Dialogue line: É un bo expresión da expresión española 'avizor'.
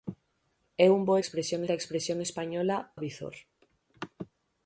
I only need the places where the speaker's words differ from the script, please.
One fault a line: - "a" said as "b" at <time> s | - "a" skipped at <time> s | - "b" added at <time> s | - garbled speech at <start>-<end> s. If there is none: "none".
none